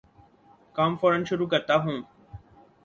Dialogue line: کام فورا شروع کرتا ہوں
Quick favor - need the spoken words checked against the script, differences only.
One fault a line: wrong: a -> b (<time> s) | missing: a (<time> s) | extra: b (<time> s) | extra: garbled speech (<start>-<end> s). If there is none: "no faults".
no faults